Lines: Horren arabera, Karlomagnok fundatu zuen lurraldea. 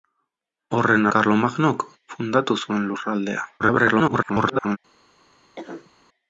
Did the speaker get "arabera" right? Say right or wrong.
wrong